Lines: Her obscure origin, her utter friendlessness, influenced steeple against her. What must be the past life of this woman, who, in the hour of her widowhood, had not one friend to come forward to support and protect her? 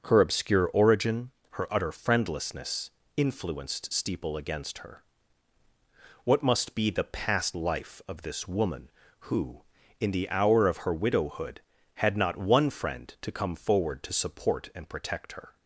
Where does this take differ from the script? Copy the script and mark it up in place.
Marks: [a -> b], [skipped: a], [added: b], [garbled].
Her obscure origin, her utter friendlessness, influenced steeple against her. What must be the past life of this woman, who, in the hour of her widowhood, had not one friend to come forward to support and protect her?